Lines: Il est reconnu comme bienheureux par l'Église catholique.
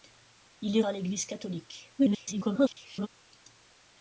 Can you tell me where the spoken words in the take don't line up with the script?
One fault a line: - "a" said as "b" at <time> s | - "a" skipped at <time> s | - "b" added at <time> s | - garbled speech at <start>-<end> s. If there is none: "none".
- "reconnu comme bienheureux" skipped at 0.8 s
- garbled speech at 2.0-3.1 s